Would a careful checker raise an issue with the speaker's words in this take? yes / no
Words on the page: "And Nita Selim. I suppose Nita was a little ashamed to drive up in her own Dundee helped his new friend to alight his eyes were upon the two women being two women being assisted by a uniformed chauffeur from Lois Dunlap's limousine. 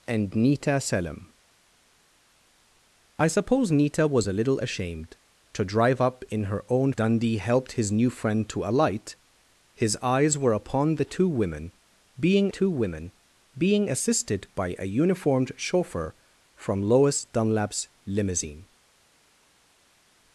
no